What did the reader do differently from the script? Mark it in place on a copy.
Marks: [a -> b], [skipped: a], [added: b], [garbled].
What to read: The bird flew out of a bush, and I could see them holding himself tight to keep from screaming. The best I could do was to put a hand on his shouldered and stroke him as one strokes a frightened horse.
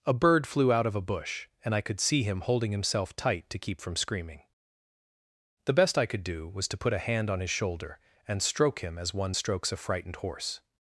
[The -> A] bird flew out of a bush, and I could see [them -> him] holding himself tight to keep from screaming. The best I could do was to put a hand on his [shouldered -> shoulder] and stroke him as one strokes a frightened horse.